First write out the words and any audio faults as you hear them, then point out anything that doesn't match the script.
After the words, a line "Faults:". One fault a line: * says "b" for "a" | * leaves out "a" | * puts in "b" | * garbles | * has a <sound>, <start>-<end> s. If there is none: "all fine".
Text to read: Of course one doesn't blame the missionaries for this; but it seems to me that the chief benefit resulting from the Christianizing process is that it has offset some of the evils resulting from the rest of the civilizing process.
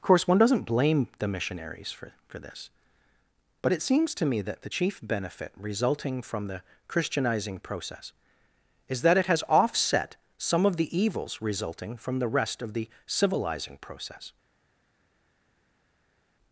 Of course one doesn't blame the missionaries for for this; but it seems to me that the chief benefit resulting from the Christianizing process is that it has offset some of the evils resulting from the rest of the civilizing process.
Faults:
* puts in "for"